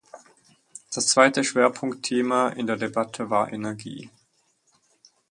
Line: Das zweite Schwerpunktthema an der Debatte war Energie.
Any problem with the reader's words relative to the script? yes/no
yes